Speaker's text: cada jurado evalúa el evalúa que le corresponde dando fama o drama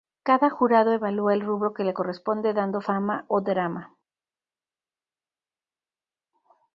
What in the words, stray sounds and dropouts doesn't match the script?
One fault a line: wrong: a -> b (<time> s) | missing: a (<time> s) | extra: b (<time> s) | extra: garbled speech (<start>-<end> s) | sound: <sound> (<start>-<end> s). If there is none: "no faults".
wrong: evalúa -> rubro (1.4 s)